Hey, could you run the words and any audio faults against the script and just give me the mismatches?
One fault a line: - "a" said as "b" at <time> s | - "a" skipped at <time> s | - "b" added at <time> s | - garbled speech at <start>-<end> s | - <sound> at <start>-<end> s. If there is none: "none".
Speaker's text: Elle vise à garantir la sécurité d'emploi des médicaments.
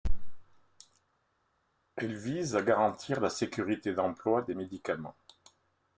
none